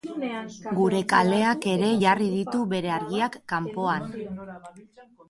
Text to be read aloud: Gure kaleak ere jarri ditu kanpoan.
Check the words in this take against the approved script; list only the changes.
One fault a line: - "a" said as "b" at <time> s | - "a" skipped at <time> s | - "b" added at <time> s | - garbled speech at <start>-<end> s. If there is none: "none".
- "bere argiak" added at 2.7 s